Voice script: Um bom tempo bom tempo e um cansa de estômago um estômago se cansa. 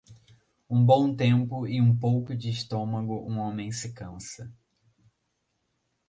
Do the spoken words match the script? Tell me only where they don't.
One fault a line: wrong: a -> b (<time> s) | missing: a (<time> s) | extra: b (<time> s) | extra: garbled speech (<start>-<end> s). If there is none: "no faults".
missing: bom tempo (1.7 s)
wrong: cansa -> pouco (1.9 s)
wrong: estômago -> homem (3.4 s)